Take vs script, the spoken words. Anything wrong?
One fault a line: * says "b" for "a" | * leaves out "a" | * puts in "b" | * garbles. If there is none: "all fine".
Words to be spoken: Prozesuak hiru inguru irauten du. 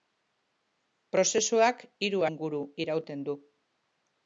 all fine